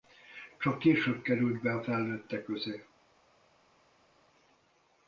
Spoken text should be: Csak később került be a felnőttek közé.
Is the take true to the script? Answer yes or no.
yes